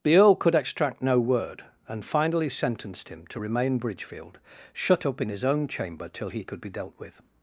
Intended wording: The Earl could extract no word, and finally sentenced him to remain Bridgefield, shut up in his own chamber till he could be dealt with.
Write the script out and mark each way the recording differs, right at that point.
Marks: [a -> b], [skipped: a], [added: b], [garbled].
The Earl could extract no word, and finally sentenced him to remain Bridgefield, shut up in his own chamber till he could be dealt with.